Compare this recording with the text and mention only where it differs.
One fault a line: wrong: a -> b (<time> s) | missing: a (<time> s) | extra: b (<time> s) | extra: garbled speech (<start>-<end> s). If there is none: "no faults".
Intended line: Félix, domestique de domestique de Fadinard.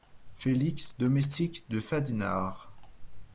missing: domestique de (1.8 s)